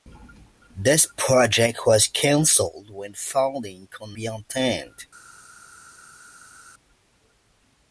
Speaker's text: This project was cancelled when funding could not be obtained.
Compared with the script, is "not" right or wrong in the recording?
wrong